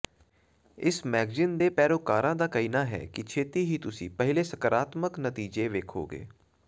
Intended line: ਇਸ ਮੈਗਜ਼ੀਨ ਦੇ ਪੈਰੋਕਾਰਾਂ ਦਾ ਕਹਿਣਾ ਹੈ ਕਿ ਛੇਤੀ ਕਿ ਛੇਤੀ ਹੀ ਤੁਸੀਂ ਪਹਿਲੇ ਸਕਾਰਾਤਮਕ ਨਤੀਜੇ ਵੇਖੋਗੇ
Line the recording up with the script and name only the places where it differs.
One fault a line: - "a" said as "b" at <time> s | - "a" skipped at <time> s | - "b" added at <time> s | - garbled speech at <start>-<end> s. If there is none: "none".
- "ਕਿ ਛੇਤੀ" skipped at 3.6 s